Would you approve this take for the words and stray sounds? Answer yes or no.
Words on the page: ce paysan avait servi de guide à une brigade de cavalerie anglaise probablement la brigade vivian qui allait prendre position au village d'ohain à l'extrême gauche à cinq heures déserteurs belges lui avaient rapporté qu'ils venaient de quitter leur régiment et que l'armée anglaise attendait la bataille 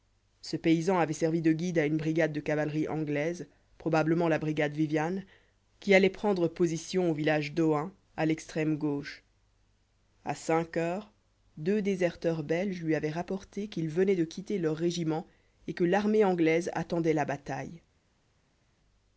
no